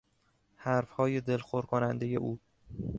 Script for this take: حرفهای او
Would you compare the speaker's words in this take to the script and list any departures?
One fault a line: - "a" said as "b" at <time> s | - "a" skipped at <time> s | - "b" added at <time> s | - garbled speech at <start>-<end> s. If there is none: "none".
- "دلخور کنندهی" added at 1.2 s